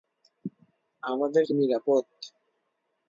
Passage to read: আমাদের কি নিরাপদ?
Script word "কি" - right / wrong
right